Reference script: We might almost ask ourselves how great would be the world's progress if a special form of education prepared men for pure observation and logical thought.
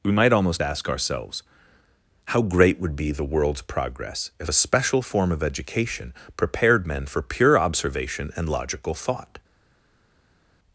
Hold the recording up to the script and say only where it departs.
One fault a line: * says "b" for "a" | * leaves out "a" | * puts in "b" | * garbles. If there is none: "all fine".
all fine